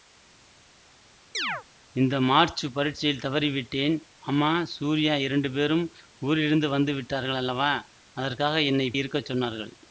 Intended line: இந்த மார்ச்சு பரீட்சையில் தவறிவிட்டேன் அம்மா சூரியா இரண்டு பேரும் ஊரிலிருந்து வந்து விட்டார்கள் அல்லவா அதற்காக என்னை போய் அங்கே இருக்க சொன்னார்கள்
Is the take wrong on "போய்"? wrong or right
wrong